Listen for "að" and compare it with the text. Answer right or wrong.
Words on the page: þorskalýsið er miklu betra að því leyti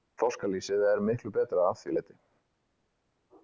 right